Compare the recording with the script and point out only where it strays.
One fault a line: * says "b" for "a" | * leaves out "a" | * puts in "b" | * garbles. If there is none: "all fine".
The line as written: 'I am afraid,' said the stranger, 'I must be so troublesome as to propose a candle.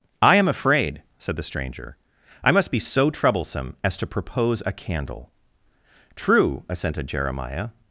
* puts in "True assented Jeremiah"